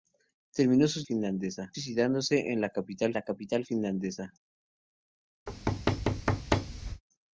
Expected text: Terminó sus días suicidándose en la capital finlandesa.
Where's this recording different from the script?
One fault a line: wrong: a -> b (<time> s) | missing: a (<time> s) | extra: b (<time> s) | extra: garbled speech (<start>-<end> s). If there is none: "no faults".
wrong: días -> finlandesa (1.0 s)
extra: la capital (3.1 s)